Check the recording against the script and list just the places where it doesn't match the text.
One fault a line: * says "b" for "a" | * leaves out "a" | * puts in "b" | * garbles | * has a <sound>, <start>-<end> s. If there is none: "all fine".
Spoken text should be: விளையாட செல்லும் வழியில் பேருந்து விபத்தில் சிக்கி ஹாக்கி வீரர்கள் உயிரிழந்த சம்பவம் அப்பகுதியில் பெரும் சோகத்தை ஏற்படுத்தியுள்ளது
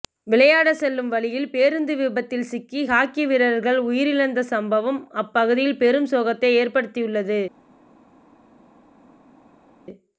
all fine